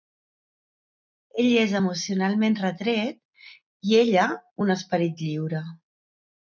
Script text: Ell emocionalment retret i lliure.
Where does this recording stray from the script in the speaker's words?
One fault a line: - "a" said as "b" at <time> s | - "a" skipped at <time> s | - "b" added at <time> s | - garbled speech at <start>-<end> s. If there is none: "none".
- "és" added at 1.6 s
- "ella un esperit" added at 4.1 s